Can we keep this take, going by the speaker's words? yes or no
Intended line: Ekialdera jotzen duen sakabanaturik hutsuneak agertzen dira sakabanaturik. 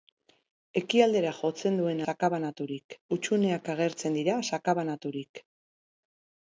yes